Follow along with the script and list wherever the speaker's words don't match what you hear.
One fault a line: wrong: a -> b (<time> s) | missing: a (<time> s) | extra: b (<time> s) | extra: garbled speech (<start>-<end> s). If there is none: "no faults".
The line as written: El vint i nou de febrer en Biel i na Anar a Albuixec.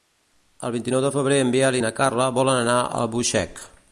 extra: Carla volen (2.0 s)